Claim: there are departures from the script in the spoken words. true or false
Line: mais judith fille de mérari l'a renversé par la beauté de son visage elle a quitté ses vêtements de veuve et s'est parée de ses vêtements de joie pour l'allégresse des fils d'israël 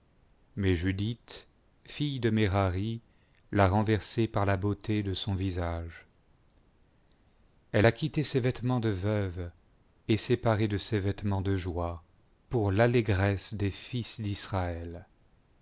false